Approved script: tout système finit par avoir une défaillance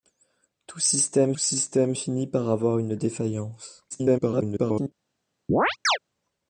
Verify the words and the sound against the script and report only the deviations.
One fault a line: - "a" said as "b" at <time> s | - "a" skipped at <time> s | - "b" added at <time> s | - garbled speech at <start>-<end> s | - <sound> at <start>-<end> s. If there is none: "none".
- "système" added at 1.4 s
- garbled speech at 3.9-4.9 s
- chirp at 5.5-6.0 s